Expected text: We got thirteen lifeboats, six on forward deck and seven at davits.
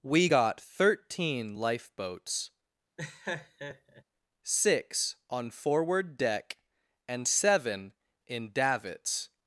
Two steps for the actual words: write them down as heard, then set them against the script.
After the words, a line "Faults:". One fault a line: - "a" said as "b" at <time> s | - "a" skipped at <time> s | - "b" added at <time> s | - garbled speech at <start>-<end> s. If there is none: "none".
We got thirteen lifeboats, six on forward deck and seven in davits.
Faults:
- "at" said as "in" at 8.3 s